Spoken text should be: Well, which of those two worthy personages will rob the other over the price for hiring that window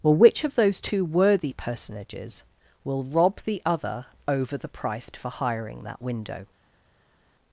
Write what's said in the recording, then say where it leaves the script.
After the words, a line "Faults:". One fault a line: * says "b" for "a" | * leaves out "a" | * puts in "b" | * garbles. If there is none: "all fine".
Well, which of those two worthy personages will rob the other over the price for hiring that window
Faults:
all fine